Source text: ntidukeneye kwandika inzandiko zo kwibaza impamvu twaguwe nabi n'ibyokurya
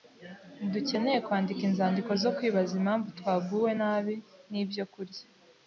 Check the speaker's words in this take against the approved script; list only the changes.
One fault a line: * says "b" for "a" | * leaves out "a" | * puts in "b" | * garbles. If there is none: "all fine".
all fine